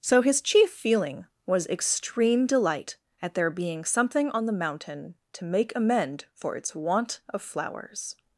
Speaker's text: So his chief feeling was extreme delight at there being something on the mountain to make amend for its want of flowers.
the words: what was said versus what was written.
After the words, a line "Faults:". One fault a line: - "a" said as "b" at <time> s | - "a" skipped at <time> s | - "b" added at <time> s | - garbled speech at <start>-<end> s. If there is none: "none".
So his chief feeling was extreme delight at there being something on the mountain to make amend for its want of flowers.
Faults:
none